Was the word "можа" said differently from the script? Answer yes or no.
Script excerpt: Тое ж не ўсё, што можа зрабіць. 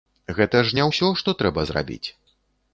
yes